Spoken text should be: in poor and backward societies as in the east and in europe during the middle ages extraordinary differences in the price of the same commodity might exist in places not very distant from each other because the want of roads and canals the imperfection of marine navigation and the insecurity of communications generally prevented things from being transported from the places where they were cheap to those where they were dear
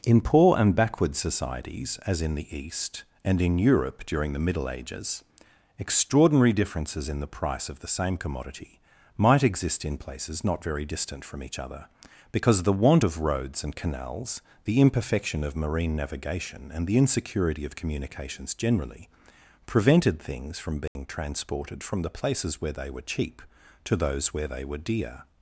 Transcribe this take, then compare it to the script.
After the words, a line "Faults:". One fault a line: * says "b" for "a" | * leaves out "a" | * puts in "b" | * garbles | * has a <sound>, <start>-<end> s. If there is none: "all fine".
in poor and backward societies as in the east and in europe during the middle ages extraordinary differences in the price of the same commodity might exist in places not very distant from each other because the want of roads and canals the imperfection of marine navigation and the insecurity of communications generally prevented things from being transported from the places where they were cheap to those where they were dear
Faults:
* has a dropout, 20.9-21.0 s